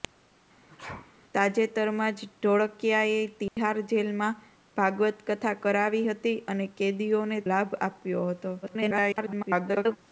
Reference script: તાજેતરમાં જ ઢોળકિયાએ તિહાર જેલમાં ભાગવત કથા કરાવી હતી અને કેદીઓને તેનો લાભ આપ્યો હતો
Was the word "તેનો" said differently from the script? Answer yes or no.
yes